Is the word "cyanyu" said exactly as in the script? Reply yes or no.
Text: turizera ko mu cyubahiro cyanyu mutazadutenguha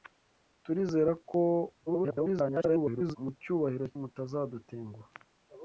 no